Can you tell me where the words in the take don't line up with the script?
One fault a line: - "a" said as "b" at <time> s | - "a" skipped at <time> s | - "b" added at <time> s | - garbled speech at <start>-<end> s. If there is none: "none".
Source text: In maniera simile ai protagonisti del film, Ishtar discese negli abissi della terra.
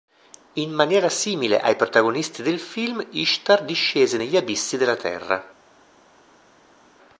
none